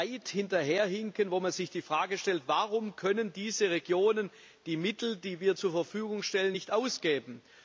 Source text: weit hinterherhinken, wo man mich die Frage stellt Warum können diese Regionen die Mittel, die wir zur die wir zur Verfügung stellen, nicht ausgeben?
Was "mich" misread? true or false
true